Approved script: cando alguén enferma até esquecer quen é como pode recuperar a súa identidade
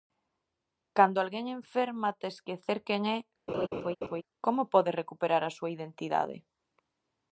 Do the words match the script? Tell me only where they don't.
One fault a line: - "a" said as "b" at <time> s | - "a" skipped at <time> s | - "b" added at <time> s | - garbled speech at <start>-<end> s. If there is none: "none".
none